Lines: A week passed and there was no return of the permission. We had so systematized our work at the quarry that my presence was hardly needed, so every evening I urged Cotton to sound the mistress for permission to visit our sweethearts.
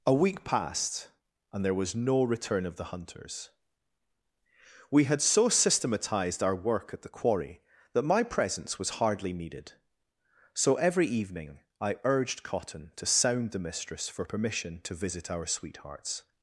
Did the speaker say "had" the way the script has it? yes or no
yes